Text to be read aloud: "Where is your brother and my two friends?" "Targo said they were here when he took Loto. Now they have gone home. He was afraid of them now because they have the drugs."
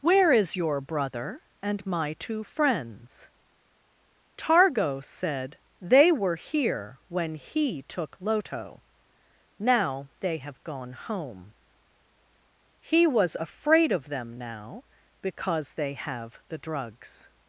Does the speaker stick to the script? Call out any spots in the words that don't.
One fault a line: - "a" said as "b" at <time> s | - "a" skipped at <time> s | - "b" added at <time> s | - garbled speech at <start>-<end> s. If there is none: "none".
none